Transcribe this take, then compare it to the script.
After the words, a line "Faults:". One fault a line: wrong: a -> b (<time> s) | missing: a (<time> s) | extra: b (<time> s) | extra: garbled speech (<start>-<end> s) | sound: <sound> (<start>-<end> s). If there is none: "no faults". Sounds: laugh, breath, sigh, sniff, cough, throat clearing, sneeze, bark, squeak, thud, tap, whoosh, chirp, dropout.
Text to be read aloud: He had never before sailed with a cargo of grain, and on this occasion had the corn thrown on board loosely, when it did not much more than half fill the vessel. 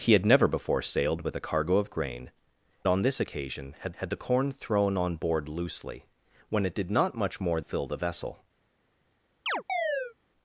He had never before sailed with a cargo of grain, on this occasion had had the corn thrown on board loosely, when it did not much more fill the vessel.
Faults:
missing: and (2.3 s)
extra: had (4.0 s)
missing: than half (7.6 s)
sound: chirp (9.5-10.1 s)